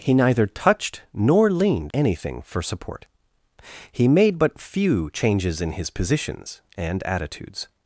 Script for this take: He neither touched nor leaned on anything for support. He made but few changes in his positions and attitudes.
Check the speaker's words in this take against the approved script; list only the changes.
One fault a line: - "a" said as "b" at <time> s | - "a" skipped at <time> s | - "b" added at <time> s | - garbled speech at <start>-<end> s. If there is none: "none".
- "on" skipped at 1.9 s